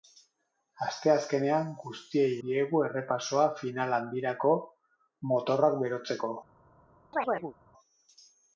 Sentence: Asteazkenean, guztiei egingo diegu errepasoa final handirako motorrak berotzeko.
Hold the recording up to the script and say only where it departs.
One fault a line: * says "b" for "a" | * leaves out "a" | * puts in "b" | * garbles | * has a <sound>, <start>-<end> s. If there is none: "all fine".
* leaves out "egingo"
* has a chirp, 7.1-7.5 s